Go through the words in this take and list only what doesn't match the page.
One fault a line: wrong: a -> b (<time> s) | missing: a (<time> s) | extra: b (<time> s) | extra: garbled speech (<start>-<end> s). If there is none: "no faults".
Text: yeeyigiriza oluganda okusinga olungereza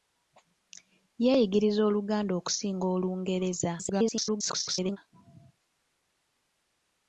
extra: garbled speech (3.8-5.0 s)